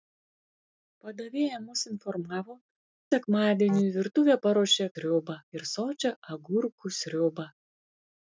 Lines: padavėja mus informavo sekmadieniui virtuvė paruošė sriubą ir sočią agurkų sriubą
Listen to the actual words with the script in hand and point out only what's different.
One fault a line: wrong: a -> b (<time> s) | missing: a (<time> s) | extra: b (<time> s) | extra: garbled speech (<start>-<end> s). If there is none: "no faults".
no faults